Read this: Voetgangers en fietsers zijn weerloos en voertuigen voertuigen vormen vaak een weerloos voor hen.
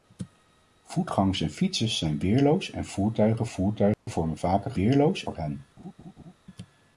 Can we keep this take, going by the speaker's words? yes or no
yes